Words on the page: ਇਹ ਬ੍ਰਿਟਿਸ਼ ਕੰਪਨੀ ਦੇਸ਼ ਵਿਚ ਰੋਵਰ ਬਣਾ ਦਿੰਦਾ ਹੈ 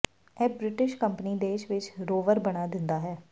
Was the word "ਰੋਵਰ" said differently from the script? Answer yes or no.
no